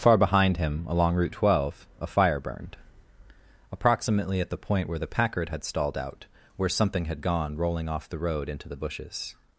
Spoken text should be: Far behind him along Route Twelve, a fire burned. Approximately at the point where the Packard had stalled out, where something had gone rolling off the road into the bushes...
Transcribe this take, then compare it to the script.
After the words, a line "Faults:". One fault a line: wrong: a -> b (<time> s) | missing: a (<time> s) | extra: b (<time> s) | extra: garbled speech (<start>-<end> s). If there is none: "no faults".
Far behind him along Route Twelve, a fire burned. Approximately at the point where the Packard had stalled out, where something had gone rolling off the road into the bushes...
Faults:
no faults